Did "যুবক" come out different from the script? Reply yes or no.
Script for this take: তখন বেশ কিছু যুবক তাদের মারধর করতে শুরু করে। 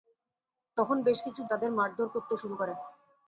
yes